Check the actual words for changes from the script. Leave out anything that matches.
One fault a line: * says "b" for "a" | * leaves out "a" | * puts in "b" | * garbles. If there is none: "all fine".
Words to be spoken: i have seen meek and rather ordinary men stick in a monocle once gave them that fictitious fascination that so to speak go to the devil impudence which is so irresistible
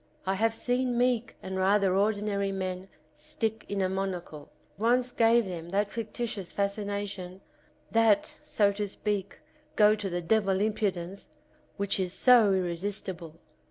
all fine